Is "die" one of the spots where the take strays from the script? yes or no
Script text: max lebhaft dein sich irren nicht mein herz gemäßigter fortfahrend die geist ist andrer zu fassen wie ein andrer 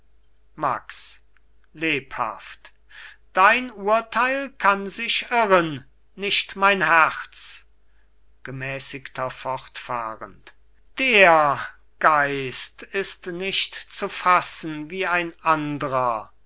yes